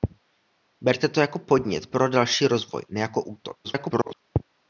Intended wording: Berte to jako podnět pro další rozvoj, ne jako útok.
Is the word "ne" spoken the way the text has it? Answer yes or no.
yes